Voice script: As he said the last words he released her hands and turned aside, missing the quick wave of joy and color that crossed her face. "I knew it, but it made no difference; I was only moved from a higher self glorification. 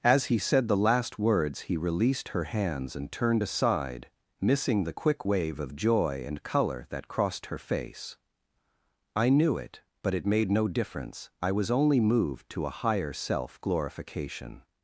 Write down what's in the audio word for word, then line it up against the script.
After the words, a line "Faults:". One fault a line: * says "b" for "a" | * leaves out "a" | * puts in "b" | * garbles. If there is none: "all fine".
As he said the last words he released her hands and turned aside, missing the quick wave of joy and color that crossed her face. "I knew it, but it made no difference; I was only moved to a higher self glorification.
Faults:
* says "to" for "from"